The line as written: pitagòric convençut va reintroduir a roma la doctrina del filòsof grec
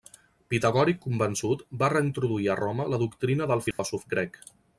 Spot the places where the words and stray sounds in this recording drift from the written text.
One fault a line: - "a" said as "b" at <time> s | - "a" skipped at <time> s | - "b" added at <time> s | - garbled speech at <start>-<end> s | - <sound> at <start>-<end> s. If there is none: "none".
- dropout at 3.7-3.8 s